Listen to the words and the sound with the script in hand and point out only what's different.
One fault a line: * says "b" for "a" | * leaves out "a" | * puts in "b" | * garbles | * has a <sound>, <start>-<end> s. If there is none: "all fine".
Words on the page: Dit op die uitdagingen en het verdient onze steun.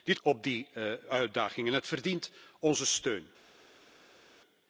all fine